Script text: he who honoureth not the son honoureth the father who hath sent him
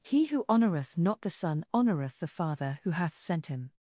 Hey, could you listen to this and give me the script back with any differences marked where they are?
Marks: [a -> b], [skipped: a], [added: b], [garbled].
he who honoureth not the son honoureth the father who hath sent him